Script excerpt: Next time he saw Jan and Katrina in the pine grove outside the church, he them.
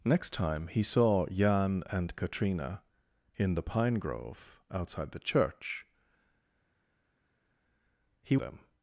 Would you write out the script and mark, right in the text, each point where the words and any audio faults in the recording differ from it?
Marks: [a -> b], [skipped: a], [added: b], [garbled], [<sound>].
Next time he saw Jan and Katrina in the pine grove outside the church, he them.